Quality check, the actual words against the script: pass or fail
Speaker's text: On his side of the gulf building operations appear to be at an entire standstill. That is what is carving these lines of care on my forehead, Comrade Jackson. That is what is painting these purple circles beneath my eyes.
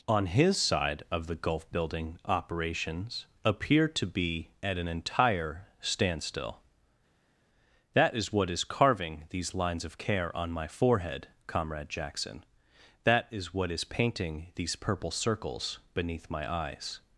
pass